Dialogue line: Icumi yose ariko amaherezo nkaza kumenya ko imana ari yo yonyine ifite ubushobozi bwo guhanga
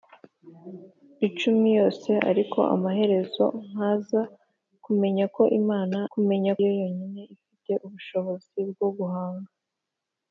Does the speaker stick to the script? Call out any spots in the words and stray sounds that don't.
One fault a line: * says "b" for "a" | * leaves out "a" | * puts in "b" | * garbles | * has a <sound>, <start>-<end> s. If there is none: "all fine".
* says "kumenya" for "ari"